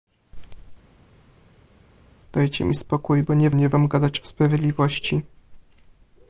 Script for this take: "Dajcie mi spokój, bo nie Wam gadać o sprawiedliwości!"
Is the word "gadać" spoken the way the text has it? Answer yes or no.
yes